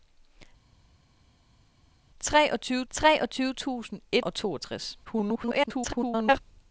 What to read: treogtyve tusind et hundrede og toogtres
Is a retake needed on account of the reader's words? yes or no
yes